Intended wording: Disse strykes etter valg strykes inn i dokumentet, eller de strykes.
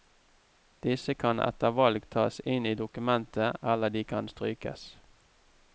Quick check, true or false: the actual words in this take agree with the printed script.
false